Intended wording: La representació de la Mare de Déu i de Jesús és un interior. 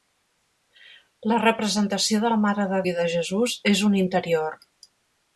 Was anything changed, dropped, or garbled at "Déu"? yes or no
yes